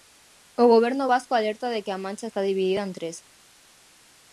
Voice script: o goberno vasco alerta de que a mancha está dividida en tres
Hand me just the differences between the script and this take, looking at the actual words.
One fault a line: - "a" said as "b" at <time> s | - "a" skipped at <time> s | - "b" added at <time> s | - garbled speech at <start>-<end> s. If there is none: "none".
none